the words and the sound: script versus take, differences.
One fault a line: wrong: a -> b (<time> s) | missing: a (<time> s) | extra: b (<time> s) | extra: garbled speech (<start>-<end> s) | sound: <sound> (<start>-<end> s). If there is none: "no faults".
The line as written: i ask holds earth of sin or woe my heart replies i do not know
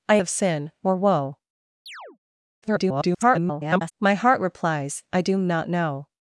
missing: ask holds earth (0.2 s)
sound: chirp (1.9-2.2 s)
extra: garbled speech (2.6-3.9 s)